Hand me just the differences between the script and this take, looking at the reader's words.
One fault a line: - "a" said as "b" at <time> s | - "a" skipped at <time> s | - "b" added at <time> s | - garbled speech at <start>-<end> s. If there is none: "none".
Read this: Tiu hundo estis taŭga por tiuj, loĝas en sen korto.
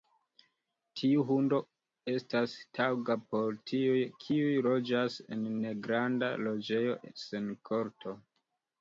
- "estis" said as "estas" at 2.1 s
- "kiuj" added at 4.2 s
- "negranda loĝejo" added at 5.7 s